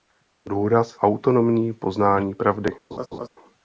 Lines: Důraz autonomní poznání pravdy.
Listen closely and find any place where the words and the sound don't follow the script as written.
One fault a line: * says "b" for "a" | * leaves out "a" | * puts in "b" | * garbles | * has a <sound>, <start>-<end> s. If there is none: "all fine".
* has a laugh, 2.9-3.3 s